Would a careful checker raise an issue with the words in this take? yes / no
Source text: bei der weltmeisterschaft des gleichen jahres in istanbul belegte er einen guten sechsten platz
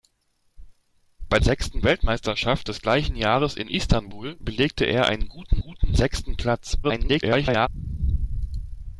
yes